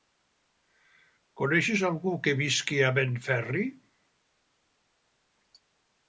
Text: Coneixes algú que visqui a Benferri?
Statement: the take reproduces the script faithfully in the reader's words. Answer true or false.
true